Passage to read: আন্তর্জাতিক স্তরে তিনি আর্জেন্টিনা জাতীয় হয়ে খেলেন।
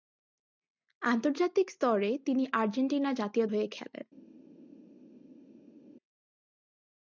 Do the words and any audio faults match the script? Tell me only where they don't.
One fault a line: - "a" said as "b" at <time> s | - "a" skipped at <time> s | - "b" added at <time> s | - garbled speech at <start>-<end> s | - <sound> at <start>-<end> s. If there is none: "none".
none